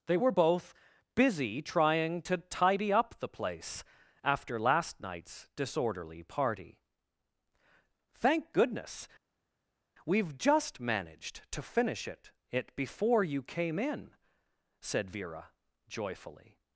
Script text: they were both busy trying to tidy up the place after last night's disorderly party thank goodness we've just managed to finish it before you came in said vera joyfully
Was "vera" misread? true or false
false